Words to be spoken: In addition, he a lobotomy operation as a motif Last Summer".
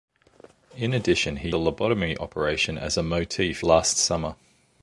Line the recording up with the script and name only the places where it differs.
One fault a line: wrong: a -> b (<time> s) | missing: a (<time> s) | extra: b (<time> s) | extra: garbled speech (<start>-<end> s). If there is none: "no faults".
no faults